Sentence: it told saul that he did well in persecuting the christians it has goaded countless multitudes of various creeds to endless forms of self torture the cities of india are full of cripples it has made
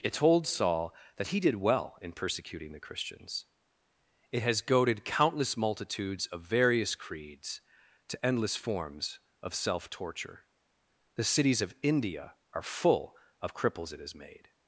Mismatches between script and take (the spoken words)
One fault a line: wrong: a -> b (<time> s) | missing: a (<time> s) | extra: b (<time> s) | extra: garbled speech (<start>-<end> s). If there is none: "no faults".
no faults